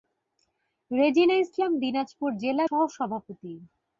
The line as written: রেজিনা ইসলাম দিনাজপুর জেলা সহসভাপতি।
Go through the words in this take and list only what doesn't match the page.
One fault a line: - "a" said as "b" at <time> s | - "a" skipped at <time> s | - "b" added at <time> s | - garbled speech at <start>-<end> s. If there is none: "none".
none